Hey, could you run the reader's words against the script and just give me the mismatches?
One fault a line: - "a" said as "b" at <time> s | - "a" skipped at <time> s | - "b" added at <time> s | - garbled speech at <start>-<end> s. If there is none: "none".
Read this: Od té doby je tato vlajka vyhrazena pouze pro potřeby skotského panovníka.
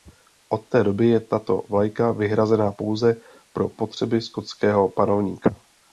none